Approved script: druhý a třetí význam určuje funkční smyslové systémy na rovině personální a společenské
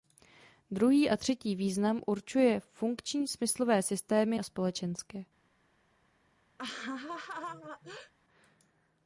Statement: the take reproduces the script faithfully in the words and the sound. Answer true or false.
false